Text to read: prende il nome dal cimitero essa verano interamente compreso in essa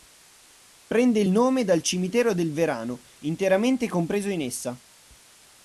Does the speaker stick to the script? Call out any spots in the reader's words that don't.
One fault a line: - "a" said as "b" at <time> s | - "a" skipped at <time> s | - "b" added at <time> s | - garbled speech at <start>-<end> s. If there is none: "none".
- "essa" said as "del" at 2.3 s